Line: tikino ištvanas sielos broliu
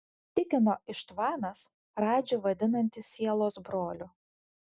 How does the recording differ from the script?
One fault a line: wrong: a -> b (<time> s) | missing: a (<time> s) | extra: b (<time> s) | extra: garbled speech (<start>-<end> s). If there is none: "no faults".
extra: radžį vadinantis (2.0 s)